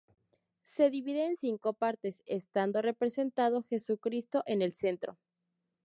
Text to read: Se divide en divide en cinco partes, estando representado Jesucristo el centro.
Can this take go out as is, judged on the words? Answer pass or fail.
fail